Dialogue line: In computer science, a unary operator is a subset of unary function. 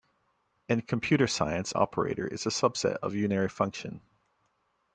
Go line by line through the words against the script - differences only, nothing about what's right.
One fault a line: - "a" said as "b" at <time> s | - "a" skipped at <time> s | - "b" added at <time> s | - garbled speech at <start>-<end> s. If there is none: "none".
- "a unary" skipped at 1.7 s